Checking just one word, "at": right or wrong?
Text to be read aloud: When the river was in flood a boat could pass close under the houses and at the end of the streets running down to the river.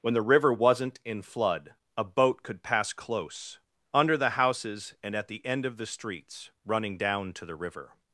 right